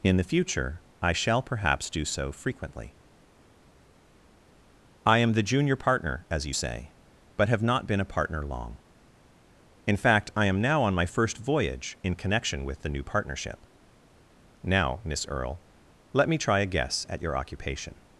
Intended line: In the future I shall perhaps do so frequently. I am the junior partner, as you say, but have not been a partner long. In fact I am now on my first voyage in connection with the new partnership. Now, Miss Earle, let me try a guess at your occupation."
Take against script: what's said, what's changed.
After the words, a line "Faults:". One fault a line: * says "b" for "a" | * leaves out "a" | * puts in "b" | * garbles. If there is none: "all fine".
In the future I shall perhaps do so frequently. I am the junior partner, as you say, but have not been a partner long. In fact I am now on my first voyage in connection with the new partnership. Now, Miss Earle, let me try a guess at your occupation."
Faults:
all fine